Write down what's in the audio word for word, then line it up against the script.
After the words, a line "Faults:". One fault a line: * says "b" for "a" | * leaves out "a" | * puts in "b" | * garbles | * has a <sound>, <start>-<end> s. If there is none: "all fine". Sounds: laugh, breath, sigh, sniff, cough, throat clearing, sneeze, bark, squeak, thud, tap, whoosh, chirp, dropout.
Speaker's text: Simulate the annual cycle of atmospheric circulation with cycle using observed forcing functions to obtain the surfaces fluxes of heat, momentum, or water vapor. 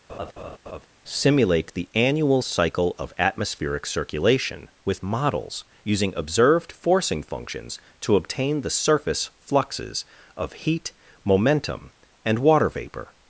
Simulate the annual cycle of atmospheric circulation with models using observed forcing functions to obtain the surface fluxes of heat, momentum, and water vapor.
Faults:
* has a laugh, 0.1-0.9 s
* says "models" for "cycle"
* says "surface" for "surfaces"
* says "and" for "or"